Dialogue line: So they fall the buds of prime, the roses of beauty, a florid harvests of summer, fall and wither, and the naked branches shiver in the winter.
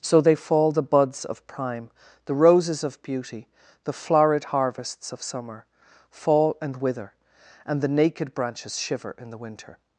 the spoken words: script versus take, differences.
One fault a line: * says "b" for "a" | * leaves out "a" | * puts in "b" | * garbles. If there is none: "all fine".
* says "the" for "a"